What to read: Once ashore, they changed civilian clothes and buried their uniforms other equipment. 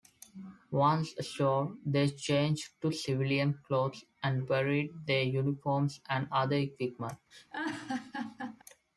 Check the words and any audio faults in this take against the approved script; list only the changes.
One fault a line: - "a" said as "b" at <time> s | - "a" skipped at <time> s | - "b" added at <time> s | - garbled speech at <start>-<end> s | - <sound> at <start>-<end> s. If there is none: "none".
- "to" added at 2.8 s
- "and" added at 6.1 s
- laugh at 7.3-8.6 s